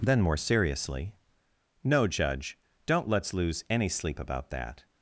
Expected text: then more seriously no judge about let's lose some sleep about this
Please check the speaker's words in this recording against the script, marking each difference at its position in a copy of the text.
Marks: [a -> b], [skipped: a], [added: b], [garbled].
then more seriously no judge [about -> don't] let's lose [some -> any] sleep about [this -> that]